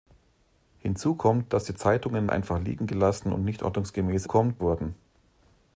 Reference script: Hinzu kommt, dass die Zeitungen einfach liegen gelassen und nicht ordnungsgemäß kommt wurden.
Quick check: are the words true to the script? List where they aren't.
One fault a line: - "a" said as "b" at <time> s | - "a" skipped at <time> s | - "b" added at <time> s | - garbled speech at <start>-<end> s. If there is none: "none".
none